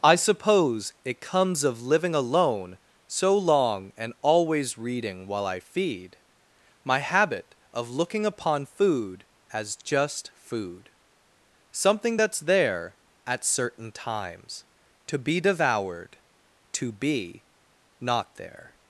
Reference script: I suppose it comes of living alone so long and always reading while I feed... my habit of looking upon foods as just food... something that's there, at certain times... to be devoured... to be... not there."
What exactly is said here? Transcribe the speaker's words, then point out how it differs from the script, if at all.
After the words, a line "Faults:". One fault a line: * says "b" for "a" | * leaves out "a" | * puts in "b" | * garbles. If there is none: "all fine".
I suppose it comes of living alone so long and always reading while I feed... my habit of looking upon food as just food... something that's there, at certain times... to be devoured... to be... not there."
Faults:
* says "food" for "foods"